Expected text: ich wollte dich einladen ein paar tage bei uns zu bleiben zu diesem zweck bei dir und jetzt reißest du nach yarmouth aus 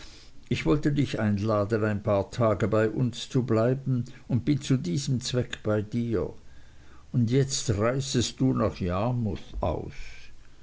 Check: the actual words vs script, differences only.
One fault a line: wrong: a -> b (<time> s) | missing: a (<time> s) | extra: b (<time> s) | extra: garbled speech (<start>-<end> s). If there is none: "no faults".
extra: und bin (4.3 s)